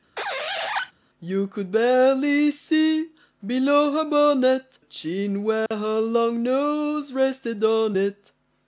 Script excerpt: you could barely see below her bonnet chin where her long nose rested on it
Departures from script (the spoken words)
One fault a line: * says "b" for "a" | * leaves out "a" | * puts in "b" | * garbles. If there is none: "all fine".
all fine